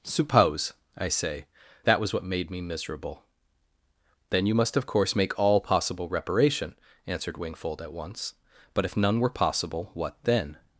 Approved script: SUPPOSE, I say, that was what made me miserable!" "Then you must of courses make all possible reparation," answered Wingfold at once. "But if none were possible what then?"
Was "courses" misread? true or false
true